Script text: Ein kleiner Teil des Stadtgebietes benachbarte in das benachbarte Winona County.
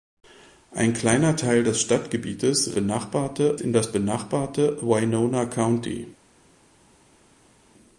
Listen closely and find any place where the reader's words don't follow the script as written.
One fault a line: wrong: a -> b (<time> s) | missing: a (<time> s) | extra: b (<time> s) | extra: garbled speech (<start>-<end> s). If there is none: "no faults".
no faults